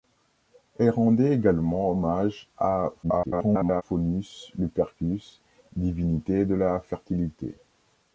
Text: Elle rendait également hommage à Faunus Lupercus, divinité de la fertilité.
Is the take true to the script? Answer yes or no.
no